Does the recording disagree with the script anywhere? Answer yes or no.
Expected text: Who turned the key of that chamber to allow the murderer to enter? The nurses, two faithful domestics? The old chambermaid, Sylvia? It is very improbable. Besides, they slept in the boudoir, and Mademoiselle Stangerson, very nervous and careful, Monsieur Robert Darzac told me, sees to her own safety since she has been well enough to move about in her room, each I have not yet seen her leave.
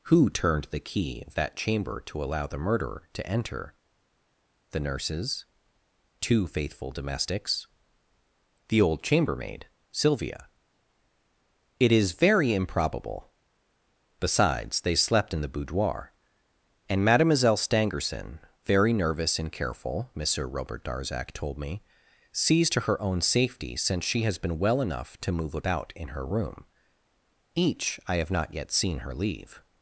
no